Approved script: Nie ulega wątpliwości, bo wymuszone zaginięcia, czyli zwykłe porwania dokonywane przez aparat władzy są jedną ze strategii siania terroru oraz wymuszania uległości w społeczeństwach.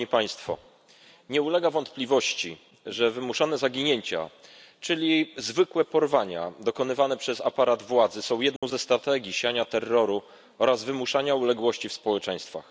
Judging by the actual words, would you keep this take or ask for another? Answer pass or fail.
fail